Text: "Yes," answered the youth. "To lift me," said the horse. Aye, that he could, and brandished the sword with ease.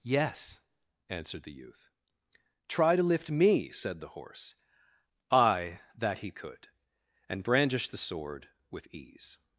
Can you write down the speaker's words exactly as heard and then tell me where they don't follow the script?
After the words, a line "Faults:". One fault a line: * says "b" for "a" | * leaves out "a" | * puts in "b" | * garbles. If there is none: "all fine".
"Yes," answered the youth. "Try to lift me," said the horse. Aye, that he could, and brandished the sword with ease.
Faults:
* puts in "Try"